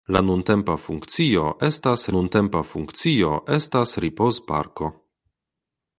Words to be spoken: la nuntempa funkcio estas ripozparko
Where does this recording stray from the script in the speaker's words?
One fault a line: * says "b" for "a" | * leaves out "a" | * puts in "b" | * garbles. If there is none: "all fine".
* puts in "nuntempa funkcio estas"